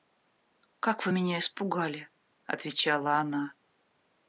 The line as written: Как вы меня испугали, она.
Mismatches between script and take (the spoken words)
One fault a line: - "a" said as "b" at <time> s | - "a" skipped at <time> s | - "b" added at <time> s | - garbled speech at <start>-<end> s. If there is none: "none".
- "отвечала" added at 2.4 s